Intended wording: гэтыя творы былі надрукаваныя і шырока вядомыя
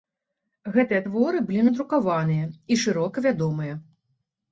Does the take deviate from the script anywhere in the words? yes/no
no